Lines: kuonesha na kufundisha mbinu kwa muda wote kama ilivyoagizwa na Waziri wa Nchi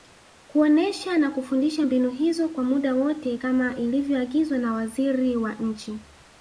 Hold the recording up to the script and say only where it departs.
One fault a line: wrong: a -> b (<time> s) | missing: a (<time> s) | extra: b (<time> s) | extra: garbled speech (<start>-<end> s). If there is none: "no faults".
extra: hizo (2.1 s)